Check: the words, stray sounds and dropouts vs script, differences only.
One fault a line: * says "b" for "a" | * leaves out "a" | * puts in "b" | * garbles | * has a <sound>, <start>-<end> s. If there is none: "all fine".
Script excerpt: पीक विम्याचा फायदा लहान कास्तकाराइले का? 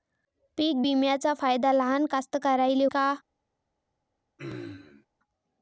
* has a throat clearing, 4.4-5.1 s